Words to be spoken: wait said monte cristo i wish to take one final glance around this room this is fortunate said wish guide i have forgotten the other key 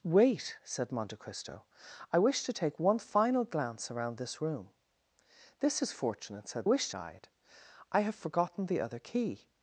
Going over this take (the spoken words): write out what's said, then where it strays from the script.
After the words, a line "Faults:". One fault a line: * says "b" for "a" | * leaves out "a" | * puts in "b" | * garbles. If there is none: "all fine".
wait said monte cristo i wish to take one final glance around this room this is fortunate said wish guide i have forgotten the other key
Faults:
all fine